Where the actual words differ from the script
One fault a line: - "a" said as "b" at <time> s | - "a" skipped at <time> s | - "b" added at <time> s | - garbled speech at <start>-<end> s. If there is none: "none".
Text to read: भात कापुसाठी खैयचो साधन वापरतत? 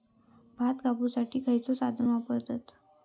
none